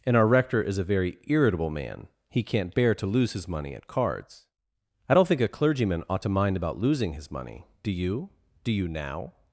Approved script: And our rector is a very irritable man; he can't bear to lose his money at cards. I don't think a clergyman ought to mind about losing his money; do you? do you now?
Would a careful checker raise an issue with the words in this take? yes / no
no